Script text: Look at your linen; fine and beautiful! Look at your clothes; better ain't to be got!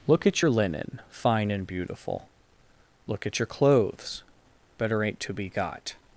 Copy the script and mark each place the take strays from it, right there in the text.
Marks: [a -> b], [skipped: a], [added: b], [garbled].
Look at your linen; fine and beautiful! Look at your clothes; better ain't to be got!